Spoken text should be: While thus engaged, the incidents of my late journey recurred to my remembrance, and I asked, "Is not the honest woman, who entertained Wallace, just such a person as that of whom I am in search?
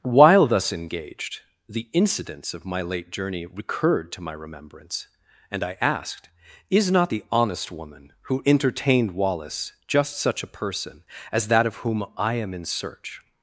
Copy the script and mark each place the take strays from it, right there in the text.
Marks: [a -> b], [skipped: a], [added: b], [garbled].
While thus engaged, the incidents of my late journey recurred to my remembrance, and I asked, "Is not the honest woman, who entertained Wallace, just such a person as that of whom I am in search?